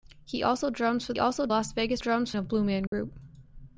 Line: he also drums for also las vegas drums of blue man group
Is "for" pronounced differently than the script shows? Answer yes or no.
no